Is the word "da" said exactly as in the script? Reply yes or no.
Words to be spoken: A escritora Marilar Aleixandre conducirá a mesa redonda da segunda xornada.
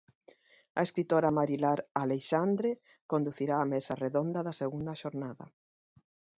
yes